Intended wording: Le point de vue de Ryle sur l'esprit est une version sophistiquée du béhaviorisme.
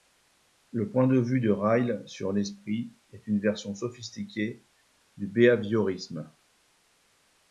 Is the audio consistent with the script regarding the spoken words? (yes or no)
yes